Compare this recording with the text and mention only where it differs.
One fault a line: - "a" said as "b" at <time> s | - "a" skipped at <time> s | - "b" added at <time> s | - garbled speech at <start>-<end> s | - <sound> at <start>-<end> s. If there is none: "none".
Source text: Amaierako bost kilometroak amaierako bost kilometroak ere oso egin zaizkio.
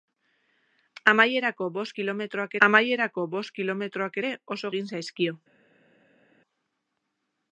none